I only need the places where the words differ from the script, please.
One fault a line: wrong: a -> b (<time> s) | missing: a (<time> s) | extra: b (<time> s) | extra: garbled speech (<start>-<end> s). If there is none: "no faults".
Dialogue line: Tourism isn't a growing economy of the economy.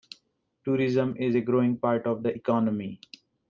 wrong: isn't -> is (1.2 s)
wrong: economy -> part (1.8 s)